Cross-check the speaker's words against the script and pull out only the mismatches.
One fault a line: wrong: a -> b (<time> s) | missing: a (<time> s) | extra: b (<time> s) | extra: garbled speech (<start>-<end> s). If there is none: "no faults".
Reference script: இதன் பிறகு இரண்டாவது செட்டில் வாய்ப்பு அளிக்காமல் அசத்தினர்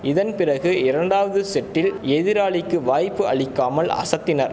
extra: எதிராளிக்கு (2.1 s)